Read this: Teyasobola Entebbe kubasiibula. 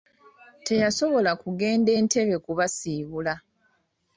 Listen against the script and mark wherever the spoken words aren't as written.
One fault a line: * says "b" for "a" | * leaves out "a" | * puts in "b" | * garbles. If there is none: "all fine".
* puts in "kugenda"